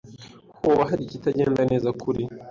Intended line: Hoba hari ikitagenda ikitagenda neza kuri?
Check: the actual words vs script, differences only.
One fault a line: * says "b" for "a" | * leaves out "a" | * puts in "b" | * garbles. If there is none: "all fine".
* leaves out "ikitagenda"